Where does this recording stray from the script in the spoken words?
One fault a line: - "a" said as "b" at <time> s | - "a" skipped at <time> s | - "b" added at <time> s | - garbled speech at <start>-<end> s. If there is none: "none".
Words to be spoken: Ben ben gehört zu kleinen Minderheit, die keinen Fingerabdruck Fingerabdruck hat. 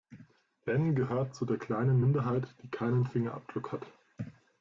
- "ben" skipped at 0.9 s
- "der" added at 1.4 s
- "Fingerabdruck" skipped at 3.7 s